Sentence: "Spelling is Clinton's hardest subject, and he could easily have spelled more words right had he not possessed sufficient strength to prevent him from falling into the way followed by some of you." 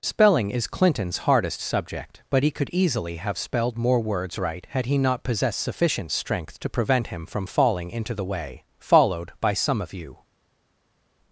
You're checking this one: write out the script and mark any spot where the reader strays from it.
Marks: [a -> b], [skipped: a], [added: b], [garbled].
"Spelling is Clinton's hardest subject, [and -> but] he could easily have spelled more words right had he not possessed sufficient strength to prevent him from falling into the way followed by some of you."